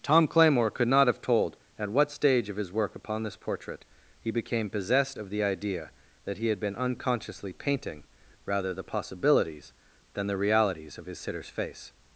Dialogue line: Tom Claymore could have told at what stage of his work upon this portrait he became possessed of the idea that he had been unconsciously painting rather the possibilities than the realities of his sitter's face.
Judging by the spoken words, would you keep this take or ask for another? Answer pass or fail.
fail